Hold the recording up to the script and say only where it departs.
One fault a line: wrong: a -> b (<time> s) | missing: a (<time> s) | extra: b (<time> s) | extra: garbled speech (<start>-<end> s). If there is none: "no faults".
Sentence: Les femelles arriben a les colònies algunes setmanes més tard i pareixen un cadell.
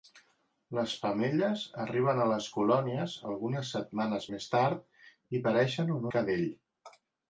no faults